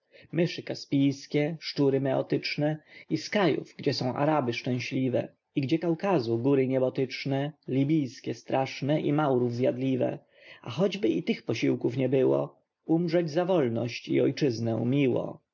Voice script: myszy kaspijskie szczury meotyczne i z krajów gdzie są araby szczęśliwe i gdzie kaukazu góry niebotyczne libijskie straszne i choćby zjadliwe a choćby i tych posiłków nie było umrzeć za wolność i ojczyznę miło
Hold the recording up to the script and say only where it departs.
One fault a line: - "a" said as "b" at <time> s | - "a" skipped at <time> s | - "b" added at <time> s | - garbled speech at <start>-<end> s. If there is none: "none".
- "choćby" said as "maurów" at 9.1 s